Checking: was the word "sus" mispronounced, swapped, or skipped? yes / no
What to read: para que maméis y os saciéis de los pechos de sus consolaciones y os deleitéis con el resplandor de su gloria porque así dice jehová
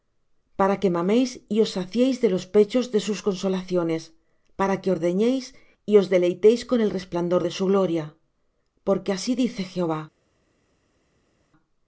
no